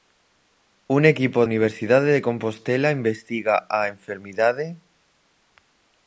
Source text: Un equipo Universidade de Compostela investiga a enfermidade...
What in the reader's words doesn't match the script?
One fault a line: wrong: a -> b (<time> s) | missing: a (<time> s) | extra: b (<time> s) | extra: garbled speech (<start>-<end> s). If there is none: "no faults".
no faults